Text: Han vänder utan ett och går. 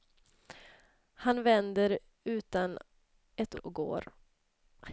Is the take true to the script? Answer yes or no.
yes